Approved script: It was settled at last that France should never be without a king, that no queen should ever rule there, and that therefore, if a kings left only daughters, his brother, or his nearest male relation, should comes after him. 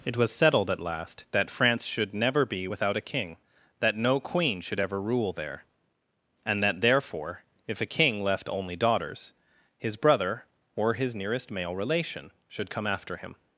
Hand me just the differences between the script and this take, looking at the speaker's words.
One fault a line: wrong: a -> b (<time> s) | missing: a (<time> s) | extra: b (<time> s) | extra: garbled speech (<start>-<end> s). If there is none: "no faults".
wrong: kings -> king (7.9 s)
wrong: comes -> come (12.7 s)